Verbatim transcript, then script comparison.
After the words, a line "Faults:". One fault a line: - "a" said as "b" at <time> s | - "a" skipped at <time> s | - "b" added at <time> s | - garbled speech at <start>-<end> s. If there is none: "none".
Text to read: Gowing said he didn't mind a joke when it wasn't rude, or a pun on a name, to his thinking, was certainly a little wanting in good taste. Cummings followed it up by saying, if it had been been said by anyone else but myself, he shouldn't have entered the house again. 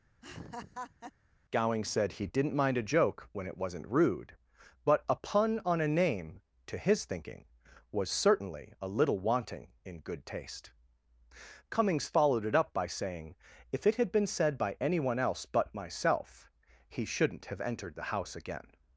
Gowing said he didn't mind a joke when it wasn't rude, but a pun on a name, to his thinking, was certainly a little wanting in good taste. Cummings followed it up by saying, if it had been said by anyone else but myself, he shouldn't have entered the house again.
Faults:
- "or" said as "but" at 4.8 s
- "been" skipped at 14.3 s